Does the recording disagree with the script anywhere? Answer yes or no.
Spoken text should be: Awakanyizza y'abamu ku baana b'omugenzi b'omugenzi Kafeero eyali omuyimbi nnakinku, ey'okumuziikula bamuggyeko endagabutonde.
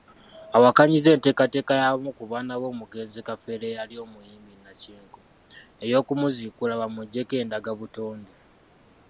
yes